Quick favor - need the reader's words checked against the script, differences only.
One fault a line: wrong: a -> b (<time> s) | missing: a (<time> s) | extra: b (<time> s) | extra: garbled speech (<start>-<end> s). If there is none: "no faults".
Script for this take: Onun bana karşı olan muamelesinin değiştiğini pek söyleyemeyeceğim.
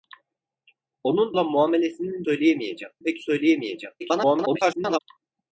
missing: bana karşı (1.4 s)
wrong: değiştiğini -> söyleyemeyeceğim (2.2 s)
extra: garbled speech (4.0-5.0 s)